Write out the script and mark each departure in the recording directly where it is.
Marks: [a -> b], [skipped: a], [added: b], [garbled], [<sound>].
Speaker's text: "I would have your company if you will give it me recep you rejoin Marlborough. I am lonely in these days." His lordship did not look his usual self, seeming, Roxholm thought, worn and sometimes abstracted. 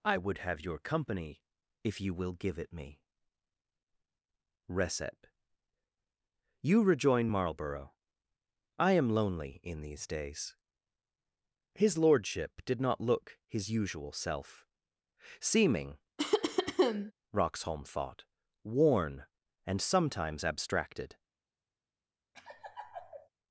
"I would have your company if you will give it me recep you rejoin Marlborough. I am lonely in these days." His lordship did not look his usual self, seeming, [cough] Roxholm thought, worn and sometimes abstracted. [laugh]